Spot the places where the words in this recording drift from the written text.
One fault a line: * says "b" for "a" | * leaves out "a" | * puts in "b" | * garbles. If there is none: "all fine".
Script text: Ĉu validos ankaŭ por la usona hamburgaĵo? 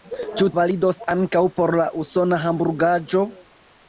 all fine